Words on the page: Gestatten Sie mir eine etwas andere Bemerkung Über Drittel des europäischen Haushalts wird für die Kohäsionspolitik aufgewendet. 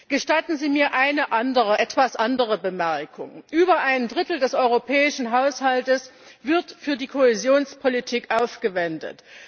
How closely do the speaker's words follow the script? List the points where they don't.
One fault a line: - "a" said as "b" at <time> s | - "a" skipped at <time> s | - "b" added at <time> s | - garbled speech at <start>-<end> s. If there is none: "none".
- "ein" added at 3.8 s